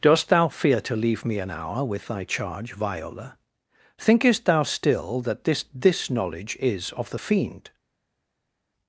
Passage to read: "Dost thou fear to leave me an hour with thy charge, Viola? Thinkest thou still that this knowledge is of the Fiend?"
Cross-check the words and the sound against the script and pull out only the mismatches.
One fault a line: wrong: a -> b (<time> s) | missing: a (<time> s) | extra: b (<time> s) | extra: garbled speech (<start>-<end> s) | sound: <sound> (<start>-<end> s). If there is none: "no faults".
extra: this (5.8 s)